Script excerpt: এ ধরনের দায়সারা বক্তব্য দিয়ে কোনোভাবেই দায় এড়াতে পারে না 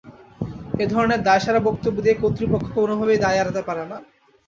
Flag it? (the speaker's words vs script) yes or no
yes